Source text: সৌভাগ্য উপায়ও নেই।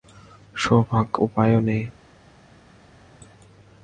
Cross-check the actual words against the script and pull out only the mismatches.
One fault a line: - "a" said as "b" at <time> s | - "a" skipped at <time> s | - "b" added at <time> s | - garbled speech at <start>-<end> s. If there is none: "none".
none